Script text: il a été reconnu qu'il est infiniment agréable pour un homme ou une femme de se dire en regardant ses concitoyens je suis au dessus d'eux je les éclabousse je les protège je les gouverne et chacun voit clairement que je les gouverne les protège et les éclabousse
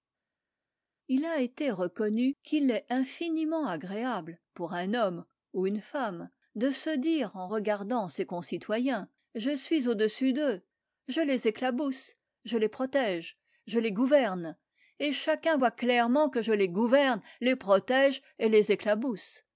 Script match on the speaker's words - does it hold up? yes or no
yes